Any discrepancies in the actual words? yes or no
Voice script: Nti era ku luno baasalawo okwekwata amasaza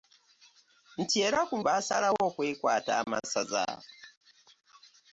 yes